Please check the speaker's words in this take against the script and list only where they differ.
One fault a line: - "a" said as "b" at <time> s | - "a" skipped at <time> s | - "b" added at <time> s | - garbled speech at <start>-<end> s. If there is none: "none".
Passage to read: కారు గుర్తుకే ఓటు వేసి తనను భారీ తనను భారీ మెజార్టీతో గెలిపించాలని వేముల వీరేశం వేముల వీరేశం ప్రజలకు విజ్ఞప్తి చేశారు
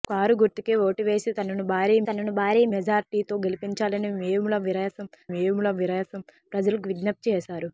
none